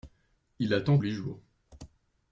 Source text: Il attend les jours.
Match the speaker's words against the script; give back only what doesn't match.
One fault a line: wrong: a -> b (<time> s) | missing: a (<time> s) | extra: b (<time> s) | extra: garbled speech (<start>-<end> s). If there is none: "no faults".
no faults